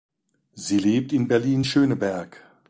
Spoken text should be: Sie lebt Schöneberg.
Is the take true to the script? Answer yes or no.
no